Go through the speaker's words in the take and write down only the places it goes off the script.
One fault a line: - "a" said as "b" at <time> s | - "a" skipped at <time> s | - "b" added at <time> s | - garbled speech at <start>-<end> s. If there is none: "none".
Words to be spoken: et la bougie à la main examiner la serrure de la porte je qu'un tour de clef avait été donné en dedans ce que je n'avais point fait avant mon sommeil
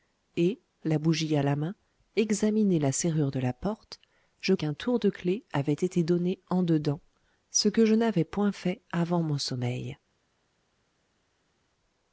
none